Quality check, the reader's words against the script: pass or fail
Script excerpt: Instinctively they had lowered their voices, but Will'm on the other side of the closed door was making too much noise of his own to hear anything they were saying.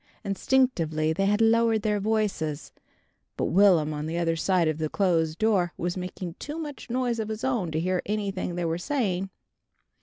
pass